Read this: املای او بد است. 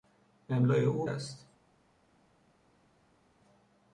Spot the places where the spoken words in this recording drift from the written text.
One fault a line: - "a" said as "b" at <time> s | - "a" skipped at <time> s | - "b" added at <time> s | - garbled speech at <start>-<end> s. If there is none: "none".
- "بد" skipped at 1.1 s